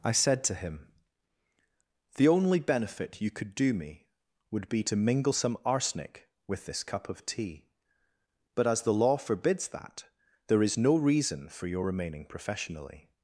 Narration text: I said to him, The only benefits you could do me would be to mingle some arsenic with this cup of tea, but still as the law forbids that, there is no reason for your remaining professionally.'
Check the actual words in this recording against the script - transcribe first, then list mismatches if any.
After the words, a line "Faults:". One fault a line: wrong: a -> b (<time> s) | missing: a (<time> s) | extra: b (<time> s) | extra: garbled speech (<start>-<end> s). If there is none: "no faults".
I said to him, The only benefit you could do me would be to mingle some arsenic with this cup of tea, but as the law forbids that, there is no reason for your remaining professionally.'
Faults:
wrong: benefits -> benefit (2.6 s)
missing: still (8.7 s)